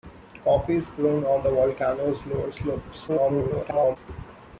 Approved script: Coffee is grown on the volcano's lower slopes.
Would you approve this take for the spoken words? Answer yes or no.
no